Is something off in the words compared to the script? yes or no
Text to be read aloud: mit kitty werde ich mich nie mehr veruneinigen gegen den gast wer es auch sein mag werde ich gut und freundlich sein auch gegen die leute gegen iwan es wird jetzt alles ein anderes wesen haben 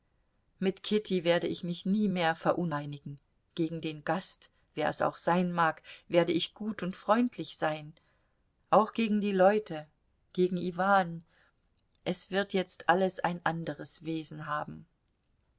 no